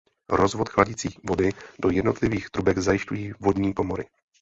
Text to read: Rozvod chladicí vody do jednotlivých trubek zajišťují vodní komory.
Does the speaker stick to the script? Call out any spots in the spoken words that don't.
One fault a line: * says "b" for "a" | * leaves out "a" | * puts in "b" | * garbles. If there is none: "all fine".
all fine